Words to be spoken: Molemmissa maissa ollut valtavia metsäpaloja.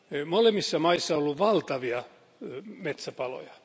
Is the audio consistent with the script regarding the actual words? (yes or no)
yes